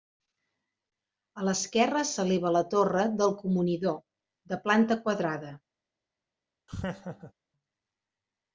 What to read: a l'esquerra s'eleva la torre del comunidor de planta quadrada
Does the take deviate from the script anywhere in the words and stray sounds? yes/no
yes